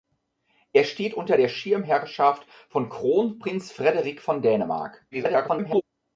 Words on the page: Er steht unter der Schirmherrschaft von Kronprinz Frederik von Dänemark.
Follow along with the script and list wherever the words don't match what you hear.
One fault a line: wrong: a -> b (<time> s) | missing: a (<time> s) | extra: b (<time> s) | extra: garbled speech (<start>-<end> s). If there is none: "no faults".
extra: garbled speech (5.1-5.8 s)